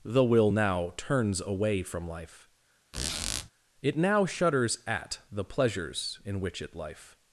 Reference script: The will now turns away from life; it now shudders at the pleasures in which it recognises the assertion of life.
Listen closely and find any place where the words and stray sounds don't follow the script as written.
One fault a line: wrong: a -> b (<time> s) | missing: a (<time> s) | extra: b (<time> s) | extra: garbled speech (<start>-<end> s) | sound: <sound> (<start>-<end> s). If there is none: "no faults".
sound: squeak (2.9-3.5 s)
missing: recognises the assertion of (6.7 s)